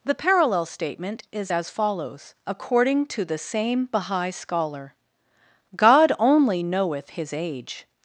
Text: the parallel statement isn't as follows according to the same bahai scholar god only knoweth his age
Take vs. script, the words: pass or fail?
fail